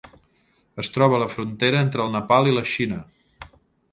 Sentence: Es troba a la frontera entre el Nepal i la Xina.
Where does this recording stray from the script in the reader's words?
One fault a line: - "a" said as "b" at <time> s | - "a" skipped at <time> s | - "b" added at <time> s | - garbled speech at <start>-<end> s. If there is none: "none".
none